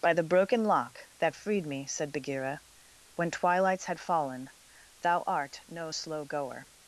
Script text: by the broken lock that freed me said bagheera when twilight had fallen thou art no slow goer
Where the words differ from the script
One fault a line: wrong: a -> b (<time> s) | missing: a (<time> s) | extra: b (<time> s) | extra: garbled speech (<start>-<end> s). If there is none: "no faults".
wrong: twilight -> twilights (3.3 s)